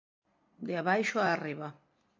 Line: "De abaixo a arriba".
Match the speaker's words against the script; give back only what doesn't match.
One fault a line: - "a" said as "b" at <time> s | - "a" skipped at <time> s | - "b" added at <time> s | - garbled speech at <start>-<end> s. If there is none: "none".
none